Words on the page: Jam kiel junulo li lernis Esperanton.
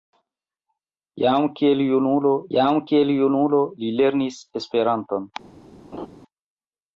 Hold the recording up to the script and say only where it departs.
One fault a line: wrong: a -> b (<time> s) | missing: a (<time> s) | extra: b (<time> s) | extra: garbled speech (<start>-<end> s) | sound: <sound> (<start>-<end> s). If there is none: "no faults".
extra: jam kiel junulo (2.6 s)
sound: laugh (5.9-6.1 s)